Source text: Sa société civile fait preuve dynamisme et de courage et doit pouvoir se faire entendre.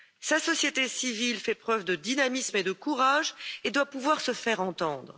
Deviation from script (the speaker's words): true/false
true